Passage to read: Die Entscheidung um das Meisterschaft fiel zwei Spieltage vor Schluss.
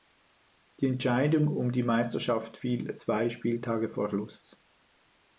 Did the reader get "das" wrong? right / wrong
wrong